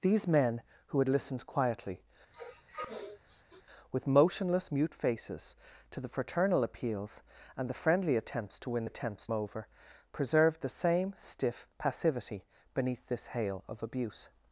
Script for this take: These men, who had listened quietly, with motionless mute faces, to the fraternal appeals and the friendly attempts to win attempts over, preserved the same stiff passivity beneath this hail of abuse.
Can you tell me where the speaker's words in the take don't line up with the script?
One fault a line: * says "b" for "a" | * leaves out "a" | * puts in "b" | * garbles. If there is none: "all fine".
all fine